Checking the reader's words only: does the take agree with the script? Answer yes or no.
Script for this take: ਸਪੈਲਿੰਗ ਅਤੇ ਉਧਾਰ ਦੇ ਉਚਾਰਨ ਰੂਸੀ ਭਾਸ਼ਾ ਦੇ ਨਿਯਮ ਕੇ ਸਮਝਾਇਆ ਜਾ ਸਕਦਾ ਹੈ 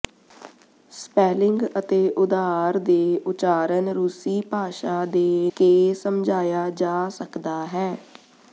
no